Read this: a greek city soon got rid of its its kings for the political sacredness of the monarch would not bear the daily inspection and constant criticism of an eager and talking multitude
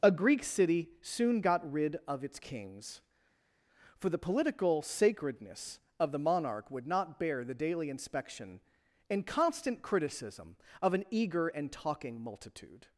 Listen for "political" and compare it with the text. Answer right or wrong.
right